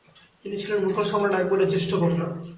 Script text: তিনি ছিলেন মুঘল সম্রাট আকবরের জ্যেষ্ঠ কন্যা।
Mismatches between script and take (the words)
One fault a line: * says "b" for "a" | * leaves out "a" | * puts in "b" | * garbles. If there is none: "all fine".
all fine